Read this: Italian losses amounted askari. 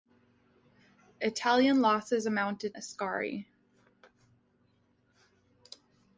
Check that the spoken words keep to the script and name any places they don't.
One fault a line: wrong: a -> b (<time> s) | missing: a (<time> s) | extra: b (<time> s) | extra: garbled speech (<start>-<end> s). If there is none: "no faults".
no faults